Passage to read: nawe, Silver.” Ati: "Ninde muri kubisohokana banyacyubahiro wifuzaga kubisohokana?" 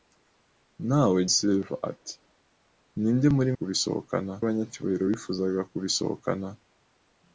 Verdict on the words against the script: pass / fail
pass